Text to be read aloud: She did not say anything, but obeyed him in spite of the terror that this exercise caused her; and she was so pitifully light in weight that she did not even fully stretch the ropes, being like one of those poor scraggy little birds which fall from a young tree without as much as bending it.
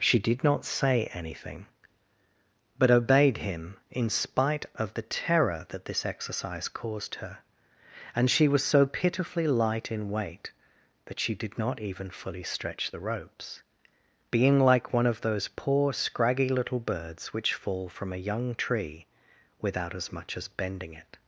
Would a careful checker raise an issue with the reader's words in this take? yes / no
no